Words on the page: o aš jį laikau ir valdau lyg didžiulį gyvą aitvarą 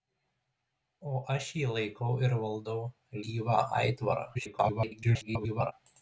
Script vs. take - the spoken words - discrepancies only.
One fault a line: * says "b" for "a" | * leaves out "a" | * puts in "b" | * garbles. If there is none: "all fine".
* leaves out "lyg didžiulį"
* garbles